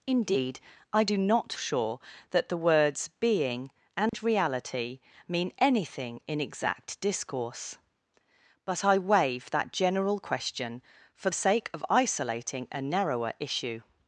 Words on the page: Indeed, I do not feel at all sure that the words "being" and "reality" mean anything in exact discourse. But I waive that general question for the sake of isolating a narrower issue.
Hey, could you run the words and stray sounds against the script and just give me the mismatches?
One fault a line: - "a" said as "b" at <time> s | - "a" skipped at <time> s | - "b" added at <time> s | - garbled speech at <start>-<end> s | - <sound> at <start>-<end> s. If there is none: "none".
- "feel at all" skipped at 1.5 s
- dropout at 4.1-4.1 s
- "the" skipped at 11.3 s